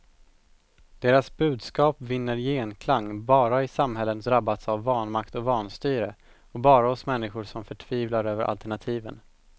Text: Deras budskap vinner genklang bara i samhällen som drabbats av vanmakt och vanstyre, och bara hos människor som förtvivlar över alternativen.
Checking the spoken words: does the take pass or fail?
fail